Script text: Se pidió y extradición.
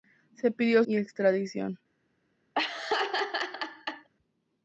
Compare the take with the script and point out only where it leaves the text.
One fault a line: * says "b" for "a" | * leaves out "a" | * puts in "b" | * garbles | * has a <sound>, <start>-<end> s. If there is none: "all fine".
* has a laugh, 2.5-4.1 s